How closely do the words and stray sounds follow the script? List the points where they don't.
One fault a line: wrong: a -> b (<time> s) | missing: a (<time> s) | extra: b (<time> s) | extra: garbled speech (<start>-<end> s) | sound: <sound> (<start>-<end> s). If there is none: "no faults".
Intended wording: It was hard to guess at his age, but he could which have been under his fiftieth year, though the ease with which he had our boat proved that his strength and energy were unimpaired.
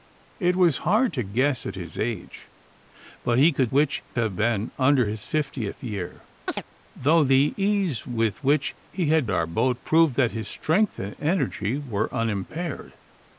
sound: chirp (6.5-6.6 s)